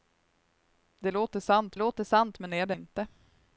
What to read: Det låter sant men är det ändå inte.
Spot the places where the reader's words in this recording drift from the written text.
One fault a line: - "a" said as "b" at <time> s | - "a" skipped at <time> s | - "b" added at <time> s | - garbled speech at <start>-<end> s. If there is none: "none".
- "låter sant" added at 1.8 s
- "ändå" skipped at 2.7 s